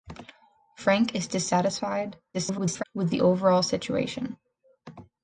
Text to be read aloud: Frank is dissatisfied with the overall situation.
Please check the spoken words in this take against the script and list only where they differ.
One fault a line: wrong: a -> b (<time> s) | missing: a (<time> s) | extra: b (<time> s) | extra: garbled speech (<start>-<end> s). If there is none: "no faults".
extra: garbled speech (2.3-2.8 s)